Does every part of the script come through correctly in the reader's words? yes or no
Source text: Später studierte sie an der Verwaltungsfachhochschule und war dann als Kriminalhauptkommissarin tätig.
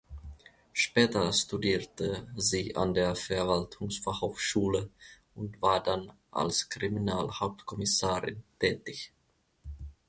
yes